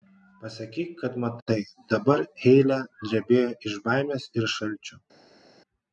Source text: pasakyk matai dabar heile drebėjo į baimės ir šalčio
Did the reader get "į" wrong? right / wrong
wrong